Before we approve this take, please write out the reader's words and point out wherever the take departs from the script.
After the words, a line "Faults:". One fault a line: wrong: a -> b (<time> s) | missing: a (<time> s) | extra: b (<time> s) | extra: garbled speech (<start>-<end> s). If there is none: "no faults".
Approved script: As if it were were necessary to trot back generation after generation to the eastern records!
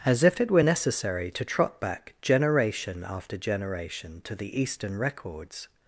As if it were necessary to trot back generation after generation to the eastern records!
Faults:
missing: were (0.6 s)